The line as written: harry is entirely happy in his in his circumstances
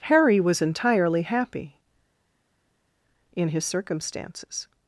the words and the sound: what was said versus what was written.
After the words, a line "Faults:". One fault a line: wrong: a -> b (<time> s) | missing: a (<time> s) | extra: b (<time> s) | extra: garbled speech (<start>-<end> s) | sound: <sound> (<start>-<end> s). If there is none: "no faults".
harry was entirely happy in his circumstances
Faults:
wrong: is -> was (0.4 s)
missing: in his (3.6 s)